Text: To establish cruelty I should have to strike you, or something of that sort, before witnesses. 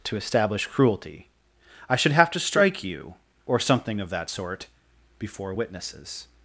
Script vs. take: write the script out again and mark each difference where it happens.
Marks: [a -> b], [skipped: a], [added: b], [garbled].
To establish cruelty I should have to strike you, or something of that sort, before witnesses.